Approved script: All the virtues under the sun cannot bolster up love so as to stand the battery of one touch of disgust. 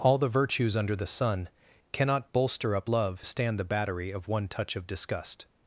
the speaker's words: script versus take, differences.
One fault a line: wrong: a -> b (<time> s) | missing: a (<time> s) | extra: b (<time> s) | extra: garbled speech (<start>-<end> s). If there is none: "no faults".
missing: so as to (3.2 s)